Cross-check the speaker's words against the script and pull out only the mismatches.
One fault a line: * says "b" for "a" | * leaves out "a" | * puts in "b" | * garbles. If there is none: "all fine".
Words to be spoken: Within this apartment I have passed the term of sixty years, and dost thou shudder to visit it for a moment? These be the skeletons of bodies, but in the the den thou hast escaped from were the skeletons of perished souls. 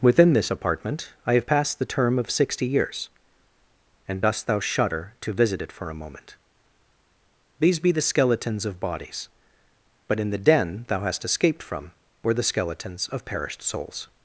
* leaves out "the"